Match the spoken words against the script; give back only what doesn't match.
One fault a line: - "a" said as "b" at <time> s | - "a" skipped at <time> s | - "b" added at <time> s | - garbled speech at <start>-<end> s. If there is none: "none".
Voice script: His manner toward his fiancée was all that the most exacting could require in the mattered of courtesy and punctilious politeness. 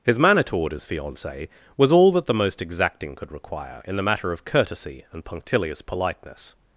- "mattered" said as "matter" at 4.0 s